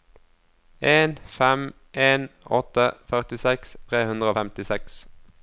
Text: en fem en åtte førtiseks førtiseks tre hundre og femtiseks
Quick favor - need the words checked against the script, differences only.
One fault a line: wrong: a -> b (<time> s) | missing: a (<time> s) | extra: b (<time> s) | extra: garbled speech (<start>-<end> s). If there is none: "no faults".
missing: førtiseks (3.8 s)